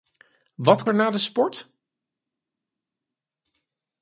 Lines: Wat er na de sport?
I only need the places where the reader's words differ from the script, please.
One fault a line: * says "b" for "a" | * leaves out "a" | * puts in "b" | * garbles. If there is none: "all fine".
all fine